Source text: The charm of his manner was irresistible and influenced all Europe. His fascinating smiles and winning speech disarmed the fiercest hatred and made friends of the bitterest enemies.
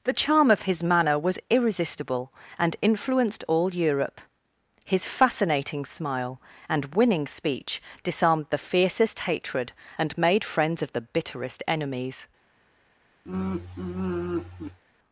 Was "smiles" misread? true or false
true